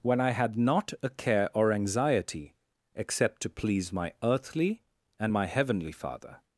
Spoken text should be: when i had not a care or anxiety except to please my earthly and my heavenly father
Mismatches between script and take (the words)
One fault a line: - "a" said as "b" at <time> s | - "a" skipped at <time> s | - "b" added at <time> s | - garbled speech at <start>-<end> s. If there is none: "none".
none